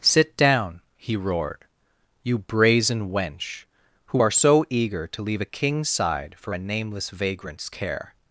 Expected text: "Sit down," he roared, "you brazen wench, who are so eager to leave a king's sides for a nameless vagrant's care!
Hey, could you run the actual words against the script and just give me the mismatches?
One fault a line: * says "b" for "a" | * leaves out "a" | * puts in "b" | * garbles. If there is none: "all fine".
* says "side" for "sides"